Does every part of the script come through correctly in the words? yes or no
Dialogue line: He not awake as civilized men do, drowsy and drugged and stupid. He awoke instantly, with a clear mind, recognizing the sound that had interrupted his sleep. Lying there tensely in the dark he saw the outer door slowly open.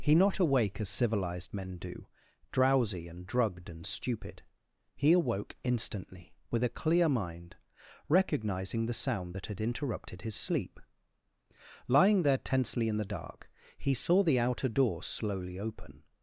yes